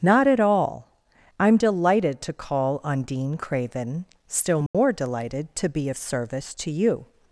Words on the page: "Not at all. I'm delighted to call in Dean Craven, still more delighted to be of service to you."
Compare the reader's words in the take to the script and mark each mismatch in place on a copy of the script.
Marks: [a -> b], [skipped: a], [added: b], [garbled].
"Not at all. I'm delighted to call [in -> on] Dean Craven, still more delighted to be of service to you."